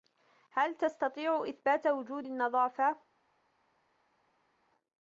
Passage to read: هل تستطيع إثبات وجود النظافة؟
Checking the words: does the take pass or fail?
pass